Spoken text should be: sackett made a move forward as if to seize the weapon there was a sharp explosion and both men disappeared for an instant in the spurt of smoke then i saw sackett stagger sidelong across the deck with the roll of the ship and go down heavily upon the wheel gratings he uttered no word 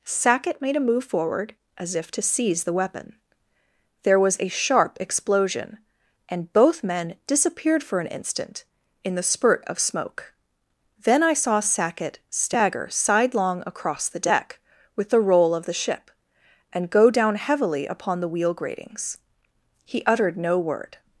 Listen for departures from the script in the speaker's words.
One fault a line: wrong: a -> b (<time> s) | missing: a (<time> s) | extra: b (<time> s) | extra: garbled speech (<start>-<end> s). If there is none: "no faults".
no faults